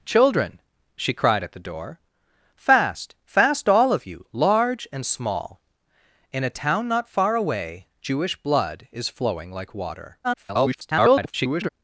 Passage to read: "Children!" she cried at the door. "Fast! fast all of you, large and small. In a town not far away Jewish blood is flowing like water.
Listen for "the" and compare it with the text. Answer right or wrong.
right